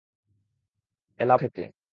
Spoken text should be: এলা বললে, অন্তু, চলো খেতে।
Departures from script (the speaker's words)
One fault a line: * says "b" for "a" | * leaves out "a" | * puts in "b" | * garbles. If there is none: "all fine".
* leaves out "বললে অন্তু চলো"